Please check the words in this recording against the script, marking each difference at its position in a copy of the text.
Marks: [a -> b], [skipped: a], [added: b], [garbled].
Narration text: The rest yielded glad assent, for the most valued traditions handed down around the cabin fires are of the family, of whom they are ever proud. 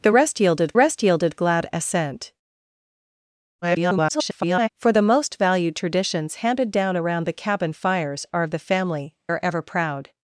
The rest yielded [added: rest yielded] glad assent, [garbled] for the most valued traditions handed down around the cabin fires are of the family, [skipped: of whom they] are ever proud.